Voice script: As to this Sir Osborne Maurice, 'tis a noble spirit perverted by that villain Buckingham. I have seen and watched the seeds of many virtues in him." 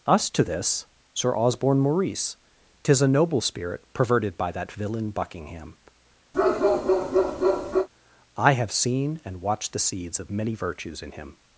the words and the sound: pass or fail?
fail